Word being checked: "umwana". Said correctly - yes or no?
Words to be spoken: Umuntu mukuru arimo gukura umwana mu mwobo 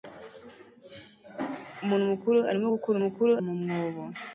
no